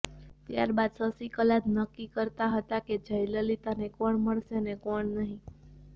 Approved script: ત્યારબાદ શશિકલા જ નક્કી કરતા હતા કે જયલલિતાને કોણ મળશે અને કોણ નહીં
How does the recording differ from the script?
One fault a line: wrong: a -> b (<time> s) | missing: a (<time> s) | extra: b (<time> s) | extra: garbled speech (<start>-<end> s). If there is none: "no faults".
no faults